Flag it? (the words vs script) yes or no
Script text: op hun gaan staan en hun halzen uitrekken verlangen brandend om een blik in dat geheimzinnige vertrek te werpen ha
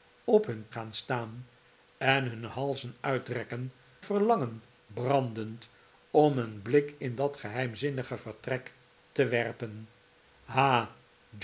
no